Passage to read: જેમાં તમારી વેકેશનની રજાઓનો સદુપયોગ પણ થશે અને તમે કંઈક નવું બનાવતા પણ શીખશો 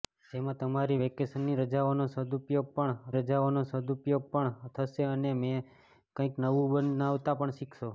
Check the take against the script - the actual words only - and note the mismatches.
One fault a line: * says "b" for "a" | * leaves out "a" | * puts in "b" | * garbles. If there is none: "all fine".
* puts in "રજાઓનો સદુપયોગ પણ"